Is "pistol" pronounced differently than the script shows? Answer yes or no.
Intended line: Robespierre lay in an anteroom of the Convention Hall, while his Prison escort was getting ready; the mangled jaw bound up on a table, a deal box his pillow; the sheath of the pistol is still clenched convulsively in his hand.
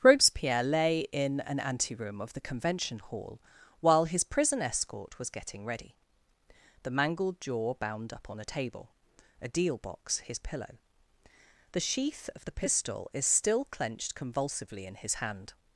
no